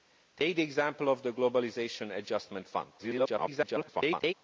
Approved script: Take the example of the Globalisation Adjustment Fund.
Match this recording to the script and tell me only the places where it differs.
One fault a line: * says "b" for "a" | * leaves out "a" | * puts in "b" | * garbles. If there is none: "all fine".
* garbles